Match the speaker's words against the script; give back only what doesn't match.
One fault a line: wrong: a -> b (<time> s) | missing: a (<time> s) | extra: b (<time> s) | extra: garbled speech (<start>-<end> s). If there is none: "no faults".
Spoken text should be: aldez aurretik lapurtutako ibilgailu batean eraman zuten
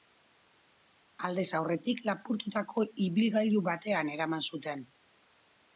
no faults